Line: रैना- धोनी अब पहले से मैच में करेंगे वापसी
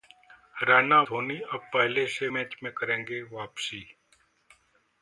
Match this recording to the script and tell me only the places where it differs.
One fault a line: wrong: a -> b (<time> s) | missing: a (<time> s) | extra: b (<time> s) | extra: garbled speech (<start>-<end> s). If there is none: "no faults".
no faults